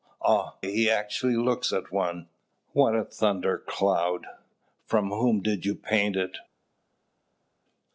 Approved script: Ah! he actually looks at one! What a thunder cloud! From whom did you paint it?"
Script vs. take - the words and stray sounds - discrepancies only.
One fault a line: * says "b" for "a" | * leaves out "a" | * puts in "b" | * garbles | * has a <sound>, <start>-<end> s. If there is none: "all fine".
all fine